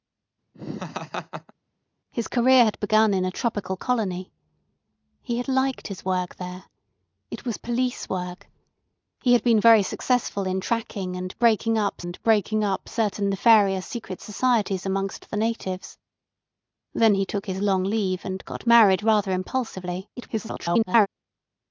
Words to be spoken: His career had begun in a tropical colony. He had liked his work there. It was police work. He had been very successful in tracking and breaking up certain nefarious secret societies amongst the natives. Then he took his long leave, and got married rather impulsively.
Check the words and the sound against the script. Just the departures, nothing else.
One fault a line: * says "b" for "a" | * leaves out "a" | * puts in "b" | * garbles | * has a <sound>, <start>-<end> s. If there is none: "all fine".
* has a laugh, 0.5-1.5 s
* puts in "and breaking up"
* garbles